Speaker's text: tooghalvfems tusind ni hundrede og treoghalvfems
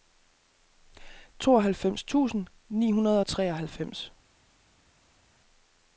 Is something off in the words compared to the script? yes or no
no